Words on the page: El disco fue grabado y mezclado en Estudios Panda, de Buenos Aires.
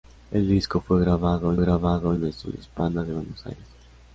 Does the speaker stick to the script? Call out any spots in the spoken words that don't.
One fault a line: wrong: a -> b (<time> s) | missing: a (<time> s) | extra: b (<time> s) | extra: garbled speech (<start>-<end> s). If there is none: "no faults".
wrong: mezclado -> grabado (1.6 s)